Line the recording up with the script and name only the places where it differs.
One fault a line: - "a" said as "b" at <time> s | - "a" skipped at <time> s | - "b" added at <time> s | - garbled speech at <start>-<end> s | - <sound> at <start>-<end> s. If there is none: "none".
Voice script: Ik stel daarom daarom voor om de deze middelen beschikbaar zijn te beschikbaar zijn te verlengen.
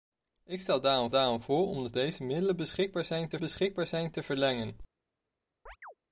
- chirp at 5.7-5.9 s